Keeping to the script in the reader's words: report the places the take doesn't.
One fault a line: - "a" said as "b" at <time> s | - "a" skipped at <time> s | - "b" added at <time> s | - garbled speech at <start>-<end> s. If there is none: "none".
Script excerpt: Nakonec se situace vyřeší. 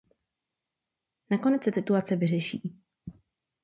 none